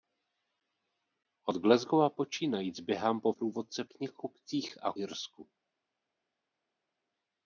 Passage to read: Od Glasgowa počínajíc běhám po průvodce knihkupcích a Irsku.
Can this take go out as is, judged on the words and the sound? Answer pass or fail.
pass